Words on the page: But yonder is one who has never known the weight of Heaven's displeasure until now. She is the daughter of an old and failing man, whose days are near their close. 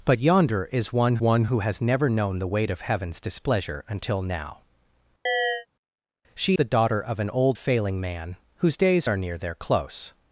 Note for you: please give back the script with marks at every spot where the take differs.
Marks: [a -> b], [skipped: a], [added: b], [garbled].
But yonder is one [added: one] who has never known the weight of Heaven's displeasure until now. She [skipped: is] the daughter of an old [skipped: and] failing man, whose days are near their close.